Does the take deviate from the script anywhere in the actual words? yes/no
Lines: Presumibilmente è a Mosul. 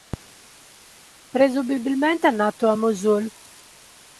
yes